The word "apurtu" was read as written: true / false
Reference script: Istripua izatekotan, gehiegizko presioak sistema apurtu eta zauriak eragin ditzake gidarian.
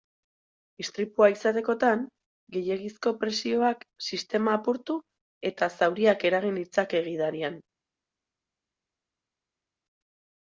true